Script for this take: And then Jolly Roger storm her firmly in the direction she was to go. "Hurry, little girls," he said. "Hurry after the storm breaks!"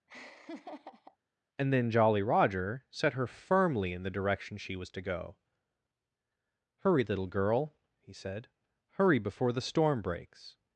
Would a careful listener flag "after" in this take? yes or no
yes